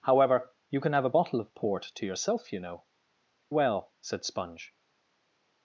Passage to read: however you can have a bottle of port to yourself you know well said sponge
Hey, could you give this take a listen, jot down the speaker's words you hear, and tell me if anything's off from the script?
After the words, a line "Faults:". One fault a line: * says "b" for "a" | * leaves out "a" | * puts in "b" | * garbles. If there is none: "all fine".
however you can have a bottle of port to yourself you know well said sponge
Faults:
all fine